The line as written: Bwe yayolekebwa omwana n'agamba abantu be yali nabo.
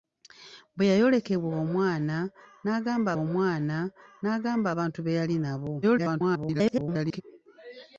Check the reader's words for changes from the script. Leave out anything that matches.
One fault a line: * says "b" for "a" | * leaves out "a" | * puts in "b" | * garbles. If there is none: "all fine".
* puts in "omwana n'agamba"
* garbles